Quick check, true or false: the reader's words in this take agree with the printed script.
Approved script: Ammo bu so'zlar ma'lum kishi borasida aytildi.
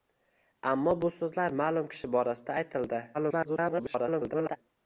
false